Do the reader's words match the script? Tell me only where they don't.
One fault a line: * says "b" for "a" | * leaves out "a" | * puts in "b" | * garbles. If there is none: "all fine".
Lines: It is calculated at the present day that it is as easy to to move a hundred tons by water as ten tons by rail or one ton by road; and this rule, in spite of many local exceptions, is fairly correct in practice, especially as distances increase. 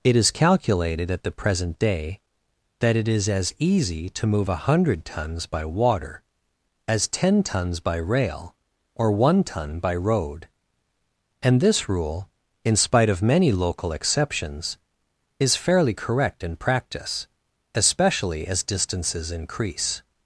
* leaves out "to"